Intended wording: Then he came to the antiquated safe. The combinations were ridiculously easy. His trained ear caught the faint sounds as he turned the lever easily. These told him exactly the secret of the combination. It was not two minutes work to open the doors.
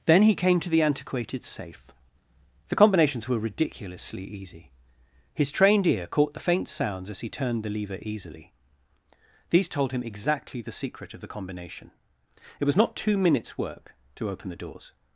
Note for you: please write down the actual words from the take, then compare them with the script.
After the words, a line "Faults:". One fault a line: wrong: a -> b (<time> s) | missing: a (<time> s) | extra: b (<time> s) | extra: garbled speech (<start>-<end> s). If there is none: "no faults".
Then he came to the antiquated safe. The combinations were ridiculously easy. His trained ear caught the faint sounds as he turned the lever easily. These told him exactly the secret of the combination. It was not two minutes work to open the doors.
Faults:
no faults